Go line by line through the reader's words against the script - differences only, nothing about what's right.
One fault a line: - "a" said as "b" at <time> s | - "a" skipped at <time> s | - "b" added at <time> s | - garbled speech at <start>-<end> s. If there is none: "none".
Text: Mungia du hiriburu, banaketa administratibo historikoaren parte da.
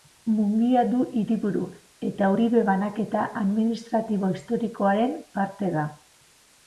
- "eta Uribe" added at 2.1 s